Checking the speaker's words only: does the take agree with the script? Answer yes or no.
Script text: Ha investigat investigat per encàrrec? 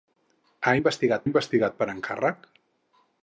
yes